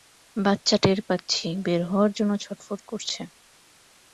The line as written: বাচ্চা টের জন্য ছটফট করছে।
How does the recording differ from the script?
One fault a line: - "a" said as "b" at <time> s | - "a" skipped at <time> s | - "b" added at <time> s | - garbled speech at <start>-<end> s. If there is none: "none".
- "পাচ্ছি বের হওয়ার" added at 1.1 s